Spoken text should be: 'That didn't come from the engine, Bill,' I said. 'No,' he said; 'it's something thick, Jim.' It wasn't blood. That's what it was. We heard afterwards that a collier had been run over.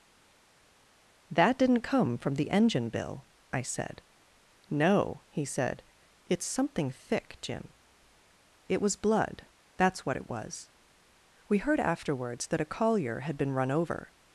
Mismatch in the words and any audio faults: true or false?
true